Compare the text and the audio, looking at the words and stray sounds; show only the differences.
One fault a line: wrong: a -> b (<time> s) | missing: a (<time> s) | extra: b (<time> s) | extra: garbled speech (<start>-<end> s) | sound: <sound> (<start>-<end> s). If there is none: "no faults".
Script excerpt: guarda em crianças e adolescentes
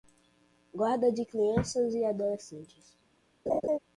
wrong: em -> de (1.1 s)
sound: laugh (3.5-3.8 s)